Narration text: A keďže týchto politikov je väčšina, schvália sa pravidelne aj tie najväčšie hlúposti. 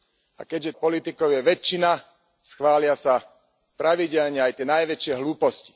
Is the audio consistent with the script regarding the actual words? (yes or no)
no